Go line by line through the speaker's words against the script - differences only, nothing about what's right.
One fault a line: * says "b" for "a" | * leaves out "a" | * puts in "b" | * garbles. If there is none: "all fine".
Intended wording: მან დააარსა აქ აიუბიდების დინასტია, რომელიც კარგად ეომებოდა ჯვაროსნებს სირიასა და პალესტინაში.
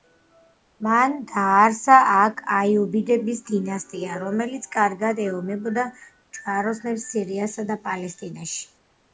all fine